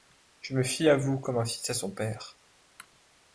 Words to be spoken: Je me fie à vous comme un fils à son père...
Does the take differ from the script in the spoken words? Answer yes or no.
no